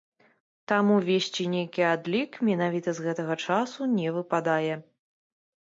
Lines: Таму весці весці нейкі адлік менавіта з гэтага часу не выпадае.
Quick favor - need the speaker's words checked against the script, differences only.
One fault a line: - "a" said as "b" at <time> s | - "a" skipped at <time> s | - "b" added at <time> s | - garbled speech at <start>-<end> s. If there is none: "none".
- "весці" skipped at 1.4 s